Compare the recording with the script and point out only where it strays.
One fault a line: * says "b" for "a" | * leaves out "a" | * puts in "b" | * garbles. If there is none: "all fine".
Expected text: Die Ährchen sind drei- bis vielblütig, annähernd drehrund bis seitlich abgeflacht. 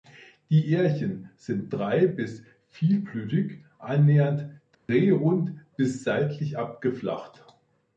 all fine